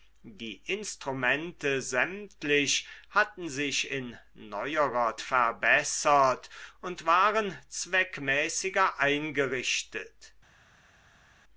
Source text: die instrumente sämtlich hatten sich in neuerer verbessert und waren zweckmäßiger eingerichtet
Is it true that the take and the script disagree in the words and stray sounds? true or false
false